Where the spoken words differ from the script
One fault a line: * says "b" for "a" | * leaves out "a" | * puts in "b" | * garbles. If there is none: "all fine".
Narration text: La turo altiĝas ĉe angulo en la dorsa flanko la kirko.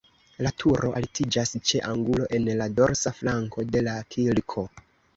* puts in "de"